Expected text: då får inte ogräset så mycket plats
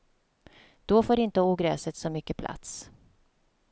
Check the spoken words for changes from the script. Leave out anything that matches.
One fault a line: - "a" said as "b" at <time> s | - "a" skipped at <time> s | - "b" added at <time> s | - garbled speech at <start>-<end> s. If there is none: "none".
none